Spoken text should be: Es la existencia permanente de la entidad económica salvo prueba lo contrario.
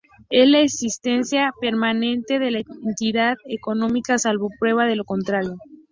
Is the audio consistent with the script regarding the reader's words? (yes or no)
no